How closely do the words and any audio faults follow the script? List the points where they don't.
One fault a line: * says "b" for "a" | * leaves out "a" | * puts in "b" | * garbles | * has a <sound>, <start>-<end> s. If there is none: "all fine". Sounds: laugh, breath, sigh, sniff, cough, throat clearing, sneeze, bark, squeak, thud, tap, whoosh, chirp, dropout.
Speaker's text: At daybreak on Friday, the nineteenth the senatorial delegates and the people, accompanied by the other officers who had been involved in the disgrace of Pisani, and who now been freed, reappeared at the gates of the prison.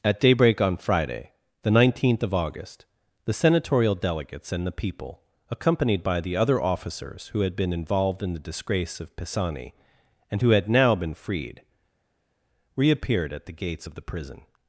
* puts in "of August"
* puts in "had"